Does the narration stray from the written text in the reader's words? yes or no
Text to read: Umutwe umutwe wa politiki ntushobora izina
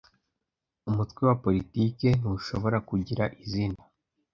yes